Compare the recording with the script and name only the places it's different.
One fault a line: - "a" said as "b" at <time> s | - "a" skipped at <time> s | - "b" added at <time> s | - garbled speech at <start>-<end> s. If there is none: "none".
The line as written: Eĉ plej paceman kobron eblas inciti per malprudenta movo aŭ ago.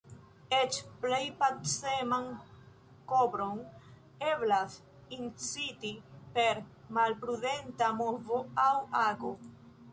none